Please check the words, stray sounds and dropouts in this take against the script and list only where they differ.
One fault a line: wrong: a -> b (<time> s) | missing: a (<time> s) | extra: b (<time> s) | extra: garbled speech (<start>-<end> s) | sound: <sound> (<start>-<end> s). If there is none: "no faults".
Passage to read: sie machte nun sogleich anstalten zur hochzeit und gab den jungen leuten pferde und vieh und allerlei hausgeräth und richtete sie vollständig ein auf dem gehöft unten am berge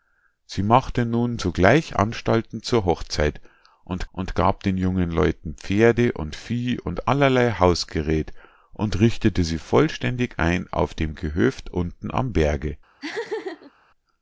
extra: und (4.1 s)
sound: laugh (13.0-13.7 s)